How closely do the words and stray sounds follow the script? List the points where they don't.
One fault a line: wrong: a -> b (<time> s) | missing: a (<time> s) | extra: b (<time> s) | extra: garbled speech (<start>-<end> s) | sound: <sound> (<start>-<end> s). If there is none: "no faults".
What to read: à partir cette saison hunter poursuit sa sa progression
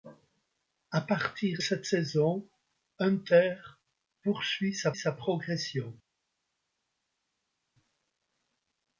no faults